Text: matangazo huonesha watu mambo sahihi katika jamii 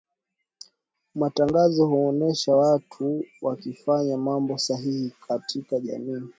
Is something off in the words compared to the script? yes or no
yes